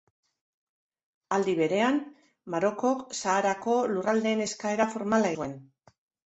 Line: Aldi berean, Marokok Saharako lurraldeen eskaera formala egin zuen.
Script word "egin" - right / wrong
wrong